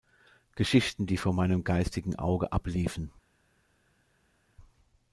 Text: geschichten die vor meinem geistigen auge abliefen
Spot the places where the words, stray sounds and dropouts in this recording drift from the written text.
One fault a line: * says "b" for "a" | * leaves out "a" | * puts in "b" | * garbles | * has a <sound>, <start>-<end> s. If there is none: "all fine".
all fine